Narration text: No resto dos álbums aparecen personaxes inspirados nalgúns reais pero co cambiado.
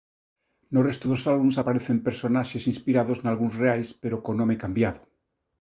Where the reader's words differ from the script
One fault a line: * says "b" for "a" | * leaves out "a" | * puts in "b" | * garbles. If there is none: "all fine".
* puts in "nome"